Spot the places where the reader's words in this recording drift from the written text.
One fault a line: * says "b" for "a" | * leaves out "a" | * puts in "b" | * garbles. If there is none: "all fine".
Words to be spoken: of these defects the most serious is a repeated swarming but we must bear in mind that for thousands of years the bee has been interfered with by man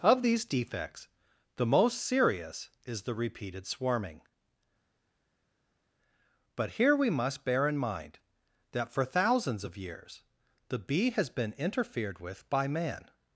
* says "the" for "a"
* puts in "here"